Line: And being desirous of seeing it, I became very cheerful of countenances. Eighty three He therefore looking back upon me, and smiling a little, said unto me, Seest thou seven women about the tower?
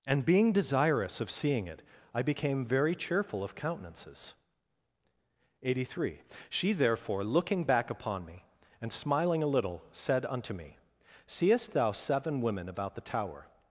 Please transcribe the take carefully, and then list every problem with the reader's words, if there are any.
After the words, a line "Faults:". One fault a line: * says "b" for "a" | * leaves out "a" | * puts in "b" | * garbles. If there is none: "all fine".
And being desirous of seeing it, I became very cheerful of countenances. Eighty three She therefore looking back upon me, and smiling a little, said unto me, Seest thou seven women about the tower?
Faults:
* says "She" for "He"